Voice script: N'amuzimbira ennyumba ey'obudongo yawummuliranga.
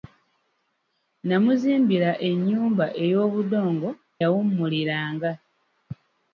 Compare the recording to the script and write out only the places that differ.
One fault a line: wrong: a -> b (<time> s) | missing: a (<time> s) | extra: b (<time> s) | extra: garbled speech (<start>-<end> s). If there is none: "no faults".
no faults